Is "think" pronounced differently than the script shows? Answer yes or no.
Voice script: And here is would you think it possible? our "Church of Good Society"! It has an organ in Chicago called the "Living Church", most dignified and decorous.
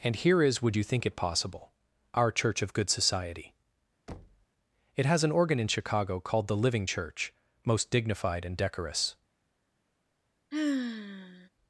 no